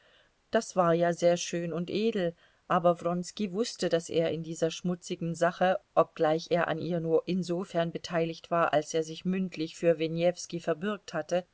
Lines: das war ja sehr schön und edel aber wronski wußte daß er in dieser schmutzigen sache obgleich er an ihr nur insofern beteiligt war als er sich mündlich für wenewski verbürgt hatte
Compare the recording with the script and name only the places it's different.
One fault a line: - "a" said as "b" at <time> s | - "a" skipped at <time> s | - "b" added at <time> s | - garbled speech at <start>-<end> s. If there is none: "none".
none